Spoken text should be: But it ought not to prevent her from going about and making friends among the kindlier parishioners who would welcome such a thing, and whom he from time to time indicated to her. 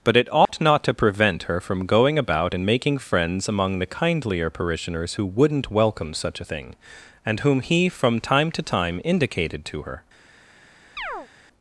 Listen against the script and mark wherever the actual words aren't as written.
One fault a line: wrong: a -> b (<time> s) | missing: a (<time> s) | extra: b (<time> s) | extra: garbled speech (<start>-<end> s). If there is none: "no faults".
wrong: would -> wouldn't (5.2 s)